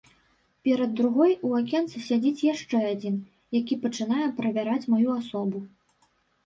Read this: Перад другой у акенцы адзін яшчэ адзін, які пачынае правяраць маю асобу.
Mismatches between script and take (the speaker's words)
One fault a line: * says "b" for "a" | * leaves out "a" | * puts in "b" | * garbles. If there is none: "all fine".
* says "сядзіць" for "адзін"